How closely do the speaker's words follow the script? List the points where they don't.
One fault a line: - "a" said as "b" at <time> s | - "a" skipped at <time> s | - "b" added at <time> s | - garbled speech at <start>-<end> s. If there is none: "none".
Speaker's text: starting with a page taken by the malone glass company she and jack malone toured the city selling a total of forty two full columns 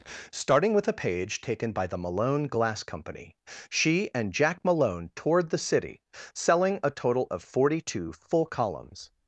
none